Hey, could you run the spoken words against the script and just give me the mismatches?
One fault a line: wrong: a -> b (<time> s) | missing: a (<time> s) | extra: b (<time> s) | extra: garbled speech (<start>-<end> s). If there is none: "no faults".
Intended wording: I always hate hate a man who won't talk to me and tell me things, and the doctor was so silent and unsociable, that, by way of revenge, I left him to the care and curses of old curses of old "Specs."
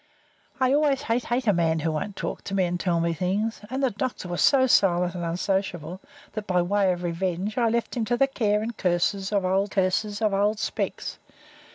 no faults